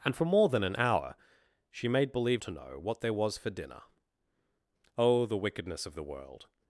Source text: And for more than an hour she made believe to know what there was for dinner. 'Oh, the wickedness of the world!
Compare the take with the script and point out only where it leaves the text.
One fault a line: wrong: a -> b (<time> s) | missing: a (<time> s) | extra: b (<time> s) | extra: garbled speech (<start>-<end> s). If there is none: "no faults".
no faults